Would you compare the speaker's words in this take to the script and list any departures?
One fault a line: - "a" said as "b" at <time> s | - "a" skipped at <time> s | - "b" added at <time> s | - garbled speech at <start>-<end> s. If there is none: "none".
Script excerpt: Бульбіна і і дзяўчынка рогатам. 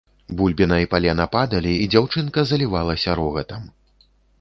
- "палена падалі" added at 0.9 s
- "залівалася" added at 2.5 s